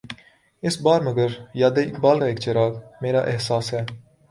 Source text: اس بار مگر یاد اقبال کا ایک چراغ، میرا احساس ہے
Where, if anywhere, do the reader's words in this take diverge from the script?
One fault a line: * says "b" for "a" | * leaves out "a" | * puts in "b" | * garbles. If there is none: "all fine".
all fine